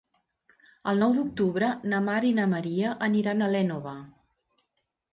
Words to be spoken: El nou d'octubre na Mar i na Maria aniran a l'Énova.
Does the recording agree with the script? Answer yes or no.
yes